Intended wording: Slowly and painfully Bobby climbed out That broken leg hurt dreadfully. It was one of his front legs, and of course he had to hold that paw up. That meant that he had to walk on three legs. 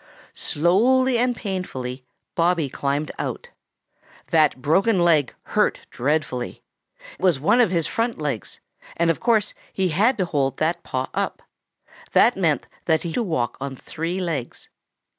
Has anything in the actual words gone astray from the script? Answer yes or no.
yes